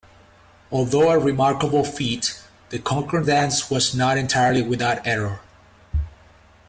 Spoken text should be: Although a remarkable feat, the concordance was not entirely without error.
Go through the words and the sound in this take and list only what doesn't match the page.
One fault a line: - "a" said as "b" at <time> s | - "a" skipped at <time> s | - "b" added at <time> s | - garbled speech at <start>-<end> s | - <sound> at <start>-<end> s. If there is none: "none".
none